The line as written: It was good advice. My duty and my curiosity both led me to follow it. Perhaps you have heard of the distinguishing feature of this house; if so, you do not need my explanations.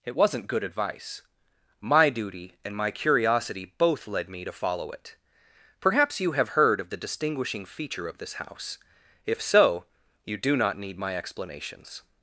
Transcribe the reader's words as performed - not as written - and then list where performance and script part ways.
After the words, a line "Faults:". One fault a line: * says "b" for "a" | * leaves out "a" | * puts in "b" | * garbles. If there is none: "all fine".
It wasn't good advice. My duty and my curiosity both led me to follow it. Perhaps you have heard of the distinguishing feature of this house; if so, you do not need my explanations.
Faults:
* says "wasn't" for "was"